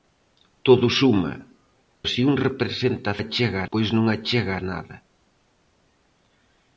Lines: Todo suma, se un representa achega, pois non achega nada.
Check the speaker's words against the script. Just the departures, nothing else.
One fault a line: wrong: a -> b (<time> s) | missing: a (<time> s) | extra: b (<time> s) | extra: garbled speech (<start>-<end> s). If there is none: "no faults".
no faults